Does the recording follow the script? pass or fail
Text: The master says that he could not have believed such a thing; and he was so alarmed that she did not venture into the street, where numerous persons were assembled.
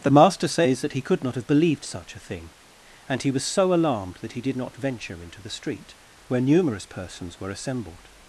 fail